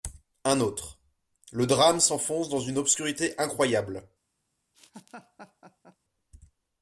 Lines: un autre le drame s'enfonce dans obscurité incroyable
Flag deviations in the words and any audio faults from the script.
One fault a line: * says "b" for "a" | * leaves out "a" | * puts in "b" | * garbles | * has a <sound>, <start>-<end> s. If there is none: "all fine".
* puts in "une"
* has a laugh, 4.7-6.0 s